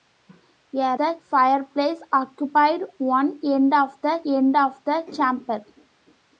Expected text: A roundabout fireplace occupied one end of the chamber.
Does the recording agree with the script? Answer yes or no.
no